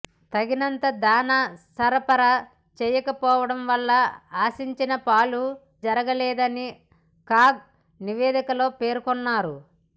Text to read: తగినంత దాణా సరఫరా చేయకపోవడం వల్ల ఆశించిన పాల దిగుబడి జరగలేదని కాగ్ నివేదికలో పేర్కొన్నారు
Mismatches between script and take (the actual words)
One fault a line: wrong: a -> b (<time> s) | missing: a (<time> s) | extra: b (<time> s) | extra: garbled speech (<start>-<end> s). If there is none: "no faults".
missing: దిగుబడి (5.4 s)